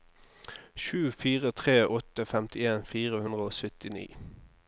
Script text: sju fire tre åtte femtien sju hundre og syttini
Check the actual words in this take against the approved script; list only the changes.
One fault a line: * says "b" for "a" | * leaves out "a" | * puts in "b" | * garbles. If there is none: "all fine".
* says "fire" for "sju"